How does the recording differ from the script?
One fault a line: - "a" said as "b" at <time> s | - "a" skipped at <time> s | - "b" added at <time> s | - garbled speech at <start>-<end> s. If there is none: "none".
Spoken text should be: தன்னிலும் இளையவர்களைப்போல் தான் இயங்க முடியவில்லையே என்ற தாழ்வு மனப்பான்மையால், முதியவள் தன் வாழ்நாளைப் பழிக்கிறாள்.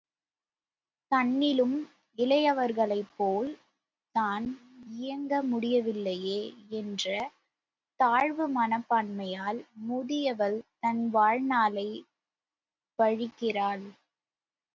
none